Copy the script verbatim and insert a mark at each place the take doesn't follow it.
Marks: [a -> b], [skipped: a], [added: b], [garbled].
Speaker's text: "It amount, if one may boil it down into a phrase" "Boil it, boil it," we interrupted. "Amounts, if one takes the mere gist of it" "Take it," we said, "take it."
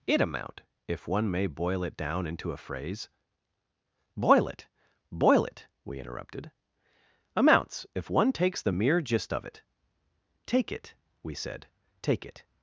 "It amount, if one may boil it down into a phrase" "Boil it, boil it," we interrupted. "Amounts, if one takes the mere gist of it" "Take it," we said, "take it."